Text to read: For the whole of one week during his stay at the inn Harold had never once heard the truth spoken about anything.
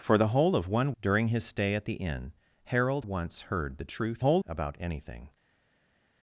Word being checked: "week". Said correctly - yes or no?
no